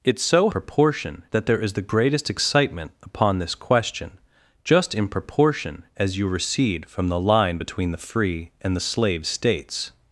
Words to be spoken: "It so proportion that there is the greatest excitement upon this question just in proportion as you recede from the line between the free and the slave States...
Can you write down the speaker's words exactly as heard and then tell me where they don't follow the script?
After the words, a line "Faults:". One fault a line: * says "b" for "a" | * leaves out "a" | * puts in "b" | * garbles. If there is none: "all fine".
"It so proportion that there is the greatest excitement upon this question just in proportion as you recede from the line between the free and the slave States...
Faults:
all fine